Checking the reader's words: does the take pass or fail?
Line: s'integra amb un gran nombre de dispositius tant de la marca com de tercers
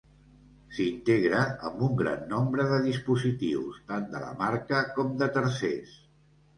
pass